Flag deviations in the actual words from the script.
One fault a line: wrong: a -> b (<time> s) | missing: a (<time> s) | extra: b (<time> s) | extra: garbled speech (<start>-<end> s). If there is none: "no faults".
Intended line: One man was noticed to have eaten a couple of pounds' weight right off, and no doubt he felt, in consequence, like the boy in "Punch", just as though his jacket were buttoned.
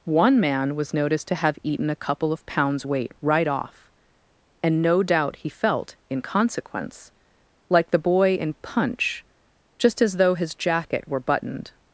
no faults